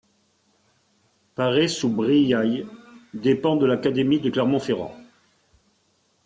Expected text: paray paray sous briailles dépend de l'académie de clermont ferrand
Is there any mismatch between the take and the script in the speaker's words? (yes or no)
yes